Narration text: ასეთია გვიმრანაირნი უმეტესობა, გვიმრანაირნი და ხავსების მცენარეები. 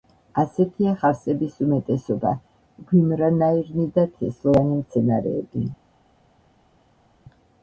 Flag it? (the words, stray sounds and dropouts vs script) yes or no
yes